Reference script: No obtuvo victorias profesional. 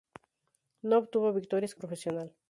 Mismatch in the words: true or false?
false